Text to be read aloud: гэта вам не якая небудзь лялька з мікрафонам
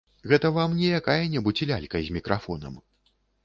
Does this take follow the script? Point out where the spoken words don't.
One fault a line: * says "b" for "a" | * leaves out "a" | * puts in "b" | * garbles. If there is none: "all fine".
all fine